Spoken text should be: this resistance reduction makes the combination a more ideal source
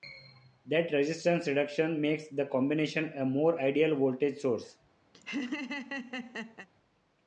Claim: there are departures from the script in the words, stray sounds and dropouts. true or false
true